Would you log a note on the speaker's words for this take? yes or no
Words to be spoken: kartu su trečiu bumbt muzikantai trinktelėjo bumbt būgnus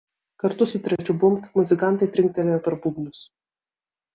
yes